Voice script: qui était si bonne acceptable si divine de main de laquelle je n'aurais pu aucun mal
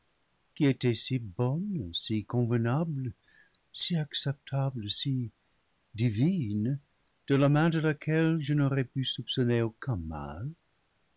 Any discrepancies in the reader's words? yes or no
yes